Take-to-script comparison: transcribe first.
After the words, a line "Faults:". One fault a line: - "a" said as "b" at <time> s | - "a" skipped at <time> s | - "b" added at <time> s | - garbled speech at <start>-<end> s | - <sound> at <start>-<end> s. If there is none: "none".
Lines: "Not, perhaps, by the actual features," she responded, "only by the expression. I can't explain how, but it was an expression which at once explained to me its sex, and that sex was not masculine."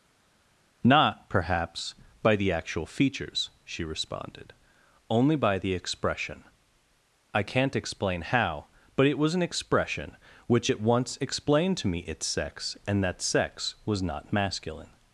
"Not, perhaps, by the actual features," she responded, "only by the expression. I can't explain how, but it was an expression which at once explained to me its sex, and that sex was not masculine."
Faults:
none